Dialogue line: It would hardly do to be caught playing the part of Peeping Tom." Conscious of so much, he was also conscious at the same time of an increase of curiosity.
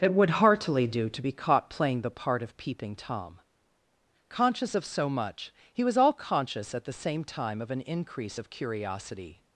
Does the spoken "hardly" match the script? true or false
false